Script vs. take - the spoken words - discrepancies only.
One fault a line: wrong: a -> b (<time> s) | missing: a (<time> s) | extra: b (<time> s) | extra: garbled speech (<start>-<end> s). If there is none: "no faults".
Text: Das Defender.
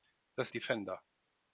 no faults